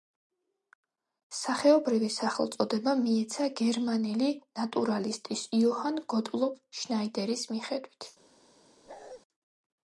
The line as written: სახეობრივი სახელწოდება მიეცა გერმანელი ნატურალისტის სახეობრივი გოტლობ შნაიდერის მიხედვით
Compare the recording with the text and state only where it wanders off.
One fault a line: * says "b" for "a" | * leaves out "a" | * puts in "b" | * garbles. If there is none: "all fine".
* says "იოჰან" for "სახეობრივი"